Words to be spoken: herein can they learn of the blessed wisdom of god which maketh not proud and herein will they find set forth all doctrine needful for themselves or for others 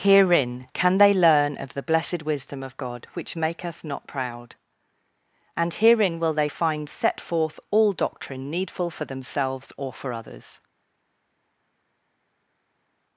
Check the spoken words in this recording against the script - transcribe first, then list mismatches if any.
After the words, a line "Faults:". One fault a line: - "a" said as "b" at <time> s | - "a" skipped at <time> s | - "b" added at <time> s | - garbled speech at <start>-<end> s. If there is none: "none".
herein can they learn of the blessed wisdom of god which maketh not proud and herein will they find set forth all doctrine needful for themselves or for others
Faults:
none